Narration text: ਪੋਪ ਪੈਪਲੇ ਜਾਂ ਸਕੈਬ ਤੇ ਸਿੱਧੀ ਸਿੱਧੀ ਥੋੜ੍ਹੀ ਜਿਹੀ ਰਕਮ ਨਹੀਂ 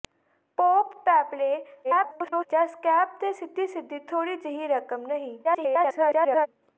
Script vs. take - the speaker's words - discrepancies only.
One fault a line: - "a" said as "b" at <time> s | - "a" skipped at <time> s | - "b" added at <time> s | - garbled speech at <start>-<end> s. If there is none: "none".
- garbled speech at 1.8-2.5 s
- garbled speech at 5.4-6.5 s